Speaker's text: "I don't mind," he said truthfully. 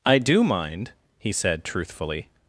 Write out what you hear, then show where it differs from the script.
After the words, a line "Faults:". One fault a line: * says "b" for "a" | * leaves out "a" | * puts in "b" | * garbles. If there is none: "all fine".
"I do mind," he said truthfully.
Faults:
* says "do" for "don't"